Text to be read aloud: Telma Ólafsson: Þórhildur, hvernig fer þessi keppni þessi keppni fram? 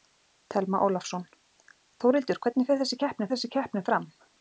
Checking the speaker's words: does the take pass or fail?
pass